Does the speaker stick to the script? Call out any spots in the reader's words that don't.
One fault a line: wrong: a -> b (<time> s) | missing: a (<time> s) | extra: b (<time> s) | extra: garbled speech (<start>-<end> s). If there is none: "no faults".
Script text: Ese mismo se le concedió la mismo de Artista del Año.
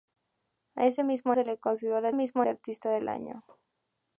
no faults